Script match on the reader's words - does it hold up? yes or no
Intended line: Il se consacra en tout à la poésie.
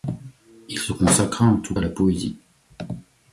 yes